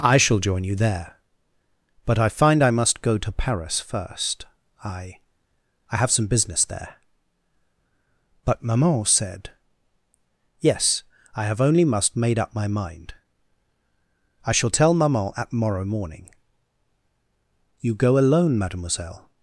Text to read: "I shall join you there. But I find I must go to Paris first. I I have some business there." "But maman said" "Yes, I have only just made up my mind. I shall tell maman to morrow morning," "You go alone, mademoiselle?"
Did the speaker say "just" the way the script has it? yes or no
no